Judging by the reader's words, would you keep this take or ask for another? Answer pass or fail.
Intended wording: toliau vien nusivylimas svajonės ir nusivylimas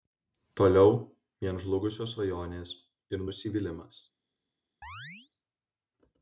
fail